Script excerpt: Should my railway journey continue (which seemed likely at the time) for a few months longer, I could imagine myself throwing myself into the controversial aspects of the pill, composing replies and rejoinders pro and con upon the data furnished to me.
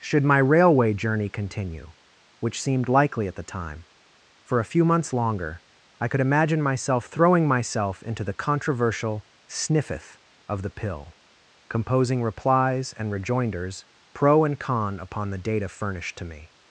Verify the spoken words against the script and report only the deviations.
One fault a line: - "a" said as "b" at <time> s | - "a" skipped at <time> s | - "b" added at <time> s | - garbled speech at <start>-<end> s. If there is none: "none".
- "aspects" said as "sniffeth" at 9.4 s